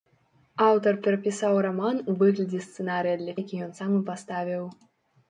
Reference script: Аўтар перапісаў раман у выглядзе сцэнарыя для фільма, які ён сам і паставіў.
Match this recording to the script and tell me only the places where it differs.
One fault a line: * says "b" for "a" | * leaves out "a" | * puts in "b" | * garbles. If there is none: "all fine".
* leaves out "фільма"